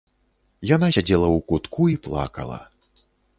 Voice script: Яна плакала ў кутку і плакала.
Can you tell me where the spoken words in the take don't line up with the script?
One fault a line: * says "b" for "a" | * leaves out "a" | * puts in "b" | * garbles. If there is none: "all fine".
* says "сядзела" for "плакала"